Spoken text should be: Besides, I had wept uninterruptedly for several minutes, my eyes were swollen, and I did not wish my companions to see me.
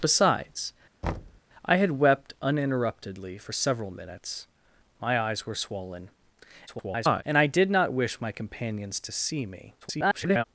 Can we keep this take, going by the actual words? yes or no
no